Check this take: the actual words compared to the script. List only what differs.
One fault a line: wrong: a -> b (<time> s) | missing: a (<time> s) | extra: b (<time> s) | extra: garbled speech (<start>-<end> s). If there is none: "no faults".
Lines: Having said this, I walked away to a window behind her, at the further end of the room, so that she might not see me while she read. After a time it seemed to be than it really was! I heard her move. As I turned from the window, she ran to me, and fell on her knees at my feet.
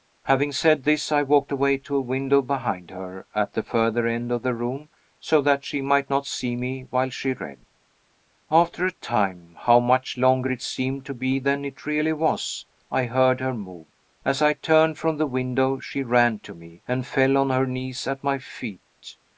extra: how much longer (9.6 s)